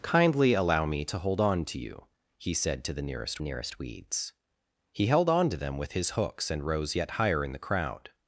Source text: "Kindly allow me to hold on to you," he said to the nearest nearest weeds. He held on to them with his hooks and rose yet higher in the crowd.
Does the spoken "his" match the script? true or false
true